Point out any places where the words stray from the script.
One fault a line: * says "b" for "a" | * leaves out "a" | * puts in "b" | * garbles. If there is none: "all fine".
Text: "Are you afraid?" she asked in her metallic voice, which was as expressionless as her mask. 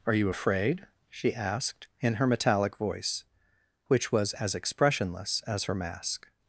all fine